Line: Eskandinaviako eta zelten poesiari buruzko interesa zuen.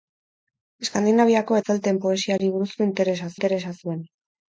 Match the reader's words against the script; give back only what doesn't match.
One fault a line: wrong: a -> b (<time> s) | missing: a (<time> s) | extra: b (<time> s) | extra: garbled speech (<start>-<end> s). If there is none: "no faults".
missing: eta (1.6 s)
extra: interesa (3.4 s)